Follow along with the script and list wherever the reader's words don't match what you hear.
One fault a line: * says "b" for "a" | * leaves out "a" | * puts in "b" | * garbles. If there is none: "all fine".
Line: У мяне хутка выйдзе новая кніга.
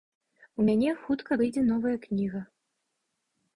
all fine